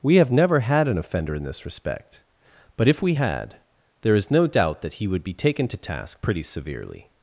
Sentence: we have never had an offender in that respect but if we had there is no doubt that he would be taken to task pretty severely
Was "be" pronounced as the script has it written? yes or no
yes